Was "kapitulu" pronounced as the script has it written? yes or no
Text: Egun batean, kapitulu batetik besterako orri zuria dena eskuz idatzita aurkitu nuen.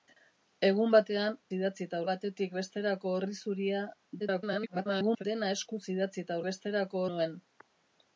no